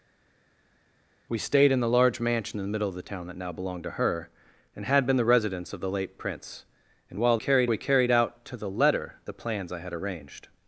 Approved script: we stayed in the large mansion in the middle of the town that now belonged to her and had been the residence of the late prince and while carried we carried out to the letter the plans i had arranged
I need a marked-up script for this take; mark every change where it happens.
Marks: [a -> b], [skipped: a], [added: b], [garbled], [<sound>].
we stayed in the large mansion in the middle of the town that now belonged to her and had been the residence of the late prince and while carried we carried out to the letter the plans i had arranged